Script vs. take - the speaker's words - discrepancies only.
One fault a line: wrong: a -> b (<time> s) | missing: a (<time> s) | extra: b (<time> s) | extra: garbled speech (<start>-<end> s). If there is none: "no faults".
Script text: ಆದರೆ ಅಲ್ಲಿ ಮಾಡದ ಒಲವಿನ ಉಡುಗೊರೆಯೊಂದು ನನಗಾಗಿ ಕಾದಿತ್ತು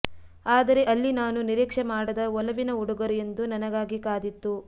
extra: ನಾನು ನಿರೀಕ್ಷೆ (1.1 s)